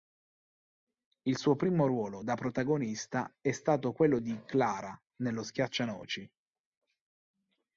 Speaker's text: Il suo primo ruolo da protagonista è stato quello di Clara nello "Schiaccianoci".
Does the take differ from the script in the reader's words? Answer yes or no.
no